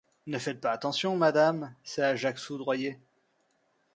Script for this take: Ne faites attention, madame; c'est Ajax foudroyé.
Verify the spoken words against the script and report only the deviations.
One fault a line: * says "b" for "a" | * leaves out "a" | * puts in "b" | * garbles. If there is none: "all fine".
* puts in "pas"